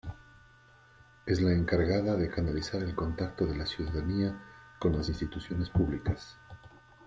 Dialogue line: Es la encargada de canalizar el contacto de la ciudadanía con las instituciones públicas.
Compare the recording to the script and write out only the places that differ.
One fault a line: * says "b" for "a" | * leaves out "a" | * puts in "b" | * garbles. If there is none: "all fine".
all fine